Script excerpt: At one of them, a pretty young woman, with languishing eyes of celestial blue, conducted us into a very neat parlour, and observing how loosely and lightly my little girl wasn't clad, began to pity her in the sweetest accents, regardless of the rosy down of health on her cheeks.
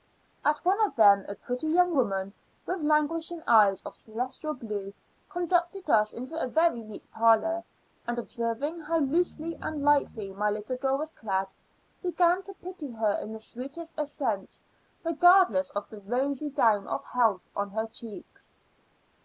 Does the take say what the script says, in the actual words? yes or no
no